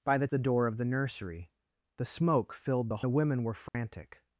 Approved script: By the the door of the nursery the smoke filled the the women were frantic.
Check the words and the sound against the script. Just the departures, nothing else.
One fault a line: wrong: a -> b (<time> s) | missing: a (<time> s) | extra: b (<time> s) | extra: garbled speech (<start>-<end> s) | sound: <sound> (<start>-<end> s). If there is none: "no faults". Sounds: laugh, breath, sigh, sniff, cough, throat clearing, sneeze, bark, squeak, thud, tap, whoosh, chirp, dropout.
sound: dropout (3.7-3.7 s)